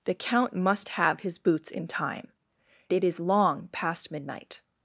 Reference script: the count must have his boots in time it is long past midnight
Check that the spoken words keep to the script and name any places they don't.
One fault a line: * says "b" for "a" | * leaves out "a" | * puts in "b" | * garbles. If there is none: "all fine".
all fine